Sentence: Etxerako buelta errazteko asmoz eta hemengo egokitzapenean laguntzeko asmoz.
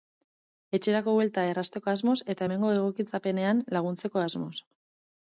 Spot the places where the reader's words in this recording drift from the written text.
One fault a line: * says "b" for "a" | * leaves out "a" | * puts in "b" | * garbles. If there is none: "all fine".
all fine